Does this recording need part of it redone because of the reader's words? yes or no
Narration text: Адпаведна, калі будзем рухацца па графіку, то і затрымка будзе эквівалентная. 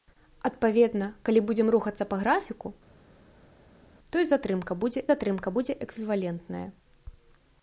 yes